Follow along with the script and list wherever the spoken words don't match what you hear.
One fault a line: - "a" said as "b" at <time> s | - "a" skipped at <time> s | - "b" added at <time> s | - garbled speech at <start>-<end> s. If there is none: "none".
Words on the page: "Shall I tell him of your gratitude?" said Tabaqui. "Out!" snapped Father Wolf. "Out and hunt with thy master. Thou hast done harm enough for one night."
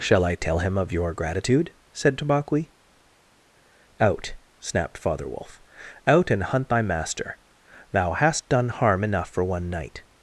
- "with" skipped at 6.7 s